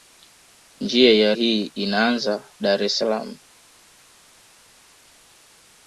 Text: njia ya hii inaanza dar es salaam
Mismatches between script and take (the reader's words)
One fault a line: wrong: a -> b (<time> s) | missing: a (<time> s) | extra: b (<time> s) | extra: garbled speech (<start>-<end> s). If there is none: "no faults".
no faults